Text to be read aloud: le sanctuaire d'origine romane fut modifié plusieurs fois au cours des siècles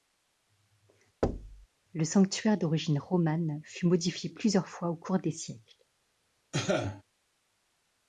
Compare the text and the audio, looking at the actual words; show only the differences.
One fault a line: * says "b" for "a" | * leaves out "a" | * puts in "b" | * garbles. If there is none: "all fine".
all fine